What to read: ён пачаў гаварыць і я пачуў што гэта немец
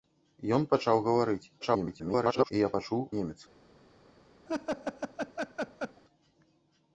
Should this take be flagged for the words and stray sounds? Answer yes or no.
yes